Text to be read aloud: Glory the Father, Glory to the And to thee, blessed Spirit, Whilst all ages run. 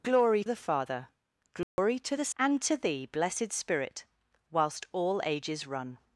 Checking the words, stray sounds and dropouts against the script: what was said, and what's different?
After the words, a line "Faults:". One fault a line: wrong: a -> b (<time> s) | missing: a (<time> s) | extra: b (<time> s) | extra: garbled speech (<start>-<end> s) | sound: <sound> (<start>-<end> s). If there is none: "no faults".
Glory the Father, Glory to the And to thee, blessed Spirit, Whilst all ages run.
Faults:
sound: dropout (1.6-1.8 s)